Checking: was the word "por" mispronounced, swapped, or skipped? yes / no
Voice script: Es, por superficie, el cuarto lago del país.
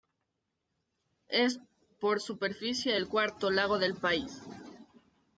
no